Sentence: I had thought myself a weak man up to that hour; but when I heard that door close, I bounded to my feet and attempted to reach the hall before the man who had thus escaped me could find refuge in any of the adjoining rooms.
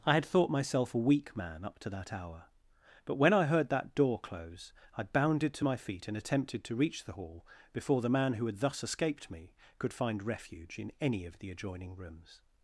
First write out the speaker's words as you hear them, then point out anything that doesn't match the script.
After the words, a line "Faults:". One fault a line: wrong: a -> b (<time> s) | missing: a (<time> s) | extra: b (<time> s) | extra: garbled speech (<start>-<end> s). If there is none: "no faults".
I had thought myself a weak man up to that hour; but when I heard that door close, I bounded to my feet and attempted to reach the hall before the man who had thus escaped me could find refuge in any of the adjoining rooms.
Faults:
no faults